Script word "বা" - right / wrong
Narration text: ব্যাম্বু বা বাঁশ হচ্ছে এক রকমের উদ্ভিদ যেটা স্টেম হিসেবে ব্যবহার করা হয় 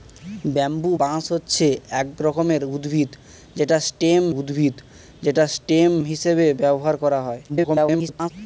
wrong